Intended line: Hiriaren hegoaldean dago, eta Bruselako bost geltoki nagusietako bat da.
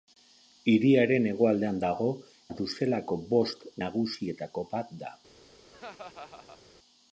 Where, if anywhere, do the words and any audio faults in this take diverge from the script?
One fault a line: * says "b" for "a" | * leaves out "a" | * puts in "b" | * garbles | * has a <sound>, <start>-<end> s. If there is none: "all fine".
* leaves out "eta"
* leaves out "geltoki"
* has a laugh, 5.7-6.6 s